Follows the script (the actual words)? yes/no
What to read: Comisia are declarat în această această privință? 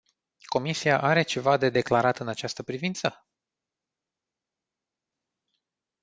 no